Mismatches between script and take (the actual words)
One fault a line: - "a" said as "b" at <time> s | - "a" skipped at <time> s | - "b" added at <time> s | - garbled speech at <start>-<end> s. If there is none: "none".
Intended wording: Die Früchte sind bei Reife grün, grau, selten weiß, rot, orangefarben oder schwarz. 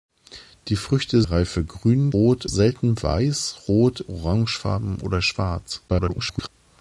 - "sind bei" skipped at 1.2 s
- "grau" said as "rot" at 2.1 s
- garbled speech at 5.9-6.5 s